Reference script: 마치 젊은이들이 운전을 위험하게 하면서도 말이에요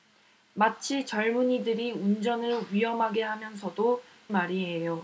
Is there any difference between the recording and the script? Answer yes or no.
no